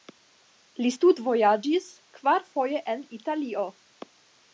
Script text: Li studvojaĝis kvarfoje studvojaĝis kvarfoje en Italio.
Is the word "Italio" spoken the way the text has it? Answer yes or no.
yes